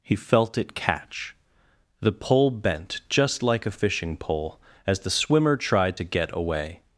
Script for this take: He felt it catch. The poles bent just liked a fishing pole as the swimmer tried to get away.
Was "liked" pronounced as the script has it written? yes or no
no